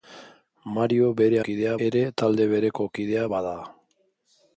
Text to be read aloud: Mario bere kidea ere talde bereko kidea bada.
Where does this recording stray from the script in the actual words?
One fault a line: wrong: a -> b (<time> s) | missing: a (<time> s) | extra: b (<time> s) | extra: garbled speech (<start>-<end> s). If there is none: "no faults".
no faults